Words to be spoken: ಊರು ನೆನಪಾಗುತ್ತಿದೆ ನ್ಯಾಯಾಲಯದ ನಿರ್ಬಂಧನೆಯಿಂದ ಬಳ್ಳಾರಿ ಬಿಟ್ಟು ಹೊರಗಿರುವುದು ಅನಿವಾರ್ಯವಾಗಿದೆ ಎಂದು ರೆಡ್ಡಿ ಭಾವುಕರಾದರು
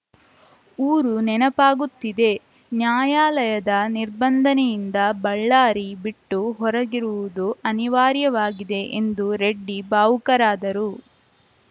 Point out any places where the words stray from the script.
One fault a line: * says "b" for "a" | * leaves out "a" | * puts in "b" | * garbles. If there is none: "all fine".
all fine